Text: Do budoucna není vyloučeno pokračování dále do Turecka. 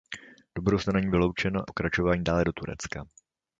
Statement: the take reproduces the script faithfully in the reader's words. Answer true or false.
true